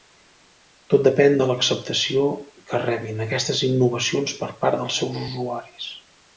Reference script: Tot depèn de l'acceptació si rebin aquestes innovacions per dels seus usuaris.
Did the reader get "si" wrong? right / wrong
wrong